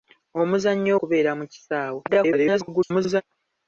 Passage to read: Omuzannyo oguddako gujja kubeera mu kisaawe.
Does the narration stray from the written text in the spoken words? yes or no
yes